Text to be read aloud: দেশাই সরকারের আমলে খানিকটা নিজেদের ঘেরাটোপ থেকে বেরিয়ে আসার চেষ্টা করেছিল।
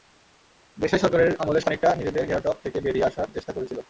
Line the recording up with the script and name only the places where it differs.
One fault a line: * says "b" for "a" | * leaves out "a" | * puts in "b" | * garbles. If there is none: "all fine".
all fine